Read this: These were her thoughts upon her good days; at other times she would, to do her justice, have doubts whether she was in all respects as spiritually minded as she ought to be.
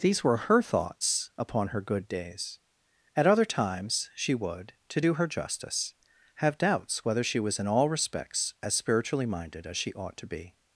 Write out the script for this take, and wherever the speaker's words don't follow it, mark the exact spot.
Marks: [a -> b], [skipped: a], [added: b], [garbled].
These were her thoughts upon her good days; at other times she would, to do her justice, have doubts whether she was in all respects as spiritually minded as she ought to be.